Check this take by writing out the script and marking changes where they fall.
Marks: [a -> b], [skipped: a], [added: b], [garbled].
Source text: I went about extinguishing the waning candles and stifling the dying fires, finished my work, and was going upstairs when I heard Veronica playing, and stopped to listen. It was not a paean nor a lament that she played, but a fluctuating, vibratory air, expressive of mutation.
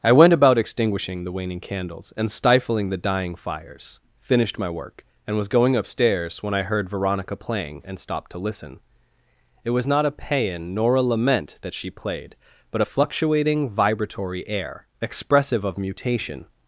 I went about extinguishing the waning candles and stifling the dying fires, finished my work, and was going upstairs when I heard Veronica playing, and stopped to listen. It was not a paean nor a lament that she played, but a fluctuating, vibratory air, expressive of mutation.